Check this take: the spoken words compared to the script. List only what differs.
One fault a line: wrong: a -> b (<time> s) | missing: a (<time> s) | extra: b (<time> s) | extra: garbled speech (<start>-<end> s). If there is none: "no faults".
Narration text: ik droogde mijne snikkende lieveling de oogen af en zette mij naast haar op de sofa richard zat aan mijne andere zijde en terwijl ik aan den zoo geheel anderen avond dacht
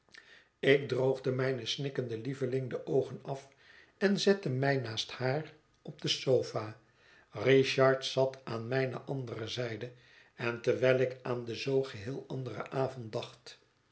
no faults